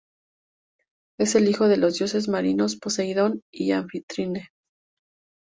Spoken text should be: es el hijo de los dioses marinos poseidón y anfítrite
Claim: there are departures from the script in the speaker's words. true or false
false